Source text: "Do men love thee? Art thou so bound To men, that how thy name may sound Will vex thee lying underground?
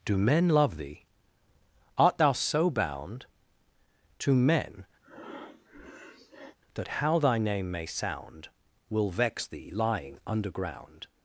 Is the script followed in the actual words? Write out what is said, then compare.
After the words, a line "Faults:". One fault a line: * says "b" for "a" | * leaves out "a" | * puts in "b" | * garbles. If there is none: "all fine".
"Do men love thee? Art thou so bound To men, that how thy name may sound Will vex thee lying underground?
Faults:
all fine